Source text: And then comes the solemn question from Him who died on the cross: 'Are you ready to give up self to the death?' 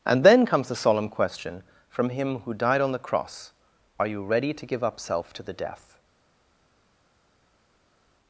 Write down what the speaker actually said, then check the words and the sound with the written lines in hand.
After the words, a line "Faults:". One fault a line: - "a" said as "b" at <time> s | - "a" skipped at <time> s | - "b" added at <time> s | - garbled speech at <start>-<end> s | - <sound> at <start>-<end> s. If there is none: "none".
And then comes the solemn question from Him who died on the cross: 'Are you ready to give up self to the death?'
Faults:
none